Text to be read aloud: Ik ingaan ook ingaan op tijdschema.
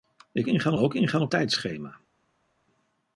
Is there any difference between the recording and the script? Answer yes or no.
no